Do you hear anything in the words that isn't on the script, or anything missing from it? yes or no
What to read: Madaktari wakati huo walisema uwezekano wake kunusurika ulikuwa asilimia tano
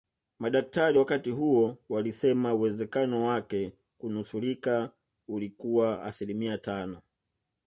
no